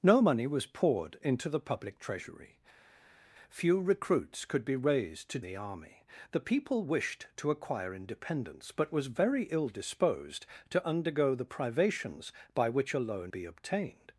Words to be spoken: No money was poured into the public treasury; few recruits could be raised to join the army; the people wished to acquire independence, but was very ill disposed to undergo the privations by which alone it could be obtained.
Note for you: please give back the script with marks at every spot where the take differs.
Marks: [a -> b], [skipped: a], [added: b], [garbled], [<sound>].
No money was poured into the public treasury; few recruits could be raised to [skipped: join] the army; the people wished to acquire independence, but was very ill disposed to undergo the privations by which alone [skipped: it could] be obtained.